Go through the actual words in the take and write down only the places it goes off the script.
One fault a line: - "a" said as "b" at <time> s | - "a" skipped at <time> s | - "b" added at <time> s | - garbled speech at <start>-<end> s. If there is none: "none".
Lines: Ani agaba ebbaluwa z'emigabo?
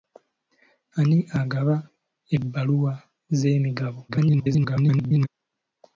- garbled speech at 4.1-5.3 s